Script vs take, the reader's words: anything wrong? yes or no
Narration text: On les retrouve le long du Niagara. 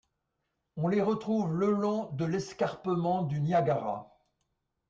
yes